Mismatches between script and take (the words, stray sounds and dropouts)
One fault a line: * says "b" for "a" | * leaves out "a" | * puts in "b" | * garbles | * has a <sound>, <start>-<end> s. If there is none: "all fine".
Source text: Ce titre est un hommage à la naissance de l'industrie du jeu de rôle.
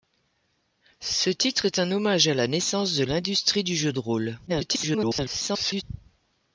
* garbles